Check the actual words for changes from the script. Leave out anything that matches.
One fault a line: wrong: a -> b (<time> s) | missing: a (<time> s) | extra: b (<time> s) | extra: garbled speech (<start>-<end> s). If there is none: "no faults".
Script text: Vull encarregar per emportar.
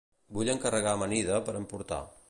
extra: amanida (1.0 s)